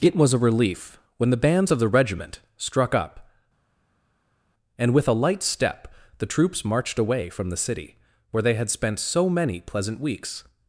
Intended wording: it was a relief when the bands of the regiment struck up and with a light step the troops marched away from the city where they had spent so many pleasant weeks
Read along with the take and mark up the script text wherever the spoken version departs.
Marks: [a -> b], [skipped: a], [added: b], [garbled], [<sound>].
it was a relief when the bands of the regiment struck up and with a light step the troops marched away from the city where they had spent so many pleasant weeks